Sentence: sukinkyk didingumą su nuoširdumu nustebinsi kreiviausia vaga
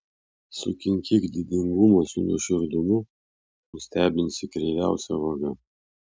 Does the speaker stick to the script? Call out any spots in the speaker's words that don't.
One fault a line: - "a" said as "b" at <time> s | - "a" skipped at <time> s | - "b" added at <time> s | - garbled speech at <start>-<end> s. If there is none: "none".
none